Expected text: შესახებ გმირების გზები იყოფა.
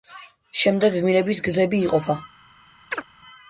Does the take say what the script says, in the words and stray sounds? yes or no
no